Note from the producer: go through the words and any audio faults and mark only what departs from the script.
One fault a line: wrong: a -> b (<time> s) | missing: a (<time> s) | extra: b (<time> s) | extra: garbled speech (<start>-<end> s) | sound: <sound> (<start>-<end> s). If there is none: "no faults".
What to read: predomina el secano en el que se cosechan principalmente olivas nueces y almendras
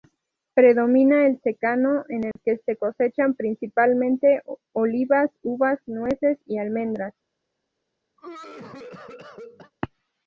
sound: dropout (2.3-2.4 s)
extra: uvas (5.4 s)
sound: cough (8.2-9.7 s)